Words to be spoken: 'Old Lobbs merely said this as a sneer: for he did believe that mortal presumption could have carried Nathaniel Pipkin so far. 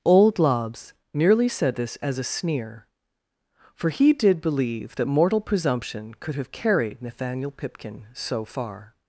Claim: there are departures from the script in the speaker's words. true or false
false